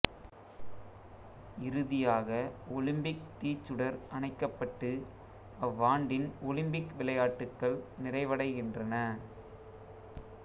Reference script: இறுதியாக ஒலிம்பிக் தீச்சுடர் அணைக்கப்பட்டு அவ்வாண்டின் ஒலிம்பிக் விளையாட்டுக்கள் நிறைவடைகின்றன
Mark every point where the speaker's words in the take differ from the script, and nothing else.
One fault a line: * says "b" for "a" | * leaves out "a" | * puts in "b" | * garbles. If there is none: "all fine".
all fine